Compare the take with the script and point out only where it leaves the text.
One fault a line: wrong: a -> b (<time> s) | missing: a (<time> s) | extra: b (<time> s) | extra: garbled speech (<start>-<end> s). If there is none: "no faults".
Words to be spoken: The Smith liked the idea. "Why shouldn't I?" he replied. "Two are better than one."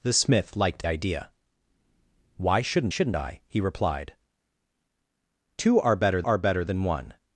missing: the (0.8 s)
extra: shouldn't (2.9 s)
extra: are better (6.2 s)